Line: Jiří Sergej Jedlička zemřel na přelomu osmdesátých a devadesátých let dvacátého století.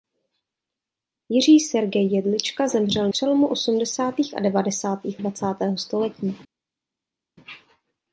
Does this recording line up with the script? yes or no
no